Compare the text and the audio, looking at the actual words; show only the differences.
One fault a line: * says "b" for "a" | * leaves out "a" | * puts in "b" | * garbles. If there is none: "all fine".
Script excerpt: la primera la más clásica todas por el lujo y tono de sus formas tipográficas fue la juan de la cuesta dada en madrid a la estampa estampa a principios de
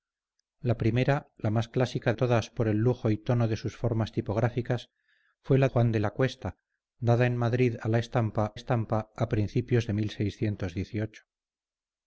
all fine